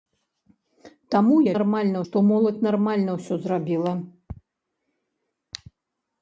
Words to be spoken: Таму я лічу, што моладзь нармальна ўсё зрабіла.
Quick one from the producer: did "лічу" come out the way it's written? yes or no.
no